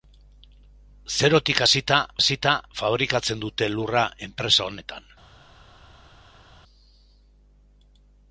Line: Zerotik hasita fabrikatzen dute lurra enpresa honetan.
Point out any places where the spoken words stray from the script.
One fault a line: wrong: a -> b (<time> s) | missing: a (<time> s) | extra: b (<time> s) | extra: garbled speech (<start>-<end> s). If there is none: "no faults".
extra: hasita (2.2 s)